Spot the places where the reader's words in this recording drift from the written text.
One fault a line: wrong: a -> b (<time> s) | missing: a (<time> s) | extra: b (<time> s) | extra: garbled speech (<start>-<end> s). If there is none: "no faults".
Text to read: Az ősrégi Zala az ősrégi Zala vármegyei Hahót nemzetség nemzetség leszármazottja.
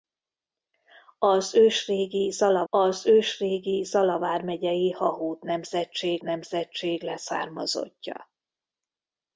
no faults